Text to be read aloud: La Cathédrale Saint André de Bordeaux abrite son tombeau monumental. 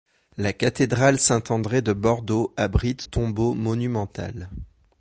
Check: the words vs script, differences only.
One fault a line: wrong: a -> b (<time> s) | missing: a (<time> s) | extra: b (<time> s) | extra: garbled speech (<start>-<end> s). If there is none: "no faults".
missing: son (3.0 s)